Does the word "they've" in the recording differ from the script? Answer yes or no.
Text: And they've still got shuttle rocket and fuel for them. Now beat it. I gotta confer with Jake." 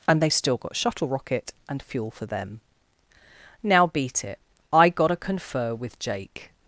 no